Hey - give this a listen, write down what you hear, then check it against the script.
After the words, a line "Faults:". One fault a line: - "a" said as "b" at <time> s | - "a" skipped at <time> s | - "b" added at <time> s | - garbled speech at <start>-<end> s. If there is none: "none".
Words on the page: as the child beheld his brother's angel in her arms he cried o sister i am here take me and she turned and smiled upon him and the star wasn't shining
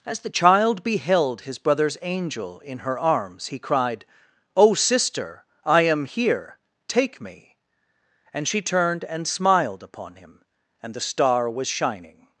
as the child beheld his brother's angel in her arms he cried o sister i am here take me and she turned and smiled upon him and the star was shining
Faults:
- "wasn't" said as "was" at 11.5 s